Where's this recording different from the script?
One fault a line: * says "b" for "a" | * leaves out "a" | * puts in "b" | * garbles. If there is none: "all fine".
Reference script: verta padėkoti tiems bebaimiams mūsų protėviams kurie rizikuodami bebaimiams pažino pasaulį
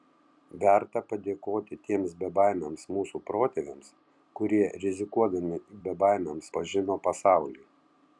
all fine